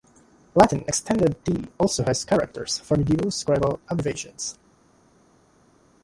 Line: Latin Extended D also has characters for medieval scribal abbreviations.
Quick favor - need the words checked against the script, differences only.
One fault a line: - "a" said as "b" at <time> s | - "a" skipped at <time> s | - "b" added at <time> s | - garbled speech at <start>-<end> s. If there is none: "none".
none